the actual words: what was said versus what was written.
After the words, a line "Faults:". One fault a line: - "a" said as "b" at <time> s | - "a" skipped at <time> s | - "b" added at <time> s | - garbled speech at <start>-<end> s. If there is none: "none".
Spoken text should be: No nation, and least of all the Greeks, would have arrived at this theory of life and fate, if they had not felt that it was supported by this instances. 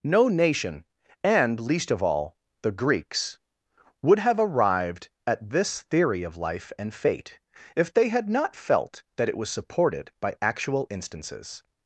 No nation, and least of all the Greeks, would have arrived at this theory of life and fate, if they had not felt that it was supported by actual instances.
Faults:
- "this" said as "actual" at 10.4 s